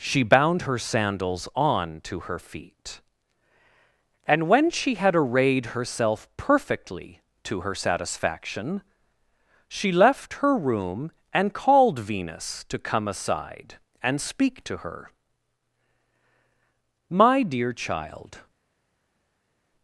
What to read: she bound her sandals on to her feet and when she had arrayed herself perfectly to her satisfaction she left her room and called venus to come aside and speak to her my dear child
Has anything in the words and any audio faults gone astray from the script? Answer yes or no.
no